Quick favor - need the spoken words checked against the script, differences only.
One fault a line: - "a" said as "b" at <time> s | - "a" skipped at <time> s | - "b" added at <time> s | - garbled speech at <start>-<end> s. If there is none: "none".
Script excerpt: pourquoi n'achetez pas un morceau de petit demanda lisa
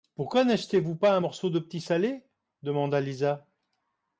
- "vous" added at 0.8 s
- "salé" added at 1.8 s